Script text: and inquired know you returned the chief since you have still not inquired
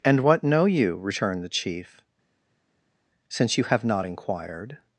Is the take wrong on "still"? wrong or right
wrong